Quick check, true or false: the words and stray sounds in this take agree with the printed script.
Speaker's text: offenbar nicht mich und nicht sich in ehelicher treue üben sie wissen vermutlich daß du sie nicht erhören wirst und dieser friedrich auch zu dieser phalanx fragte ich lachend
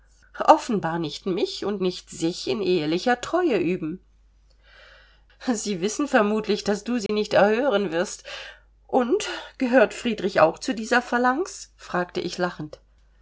false